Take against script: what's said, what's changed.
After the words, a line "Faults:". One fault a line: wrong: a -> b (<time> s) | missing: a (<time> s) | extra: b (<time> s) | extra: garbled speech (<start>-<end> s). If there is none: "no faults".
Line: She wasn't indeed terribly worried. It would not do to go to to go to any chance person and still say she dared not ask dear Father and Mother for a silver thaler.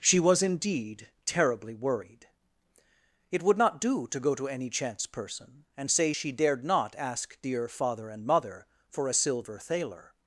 She was indeed terribly worried. It would not do to go to any chance person and say she dared not ask dear Father and Mother for a silver thaler.
Faults:
wrong: wasn't -> was (0.2 s)
missing: to go to (4.5 s)
missing: still (5.9 s)